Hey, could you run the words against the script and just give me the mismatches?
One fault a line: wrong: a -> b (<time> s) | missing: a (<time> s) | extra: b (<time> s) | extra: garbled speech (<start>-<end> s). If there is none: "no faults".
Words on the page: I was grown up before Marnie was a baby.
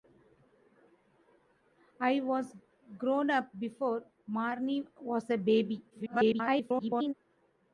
extra: garbled speech (5.9-7.1 s)